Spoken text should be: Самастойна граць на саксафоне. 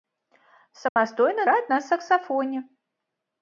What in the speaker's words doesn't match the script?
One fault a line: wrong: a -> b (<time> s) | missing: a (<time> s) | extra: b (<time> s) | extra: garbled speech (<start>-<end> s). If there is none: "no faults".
no faults